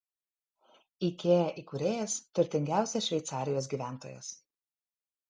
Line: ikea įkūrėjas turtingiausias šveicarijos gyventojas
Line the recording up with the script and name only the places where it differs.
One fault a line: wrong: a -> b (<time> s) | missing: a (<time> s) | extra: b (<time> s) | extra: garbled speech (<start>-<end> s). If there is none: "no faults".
no faults